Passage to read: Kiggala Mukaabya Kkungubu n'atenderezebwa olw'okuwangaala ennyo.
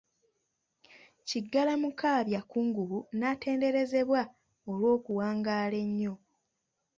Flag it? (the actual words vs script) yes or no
no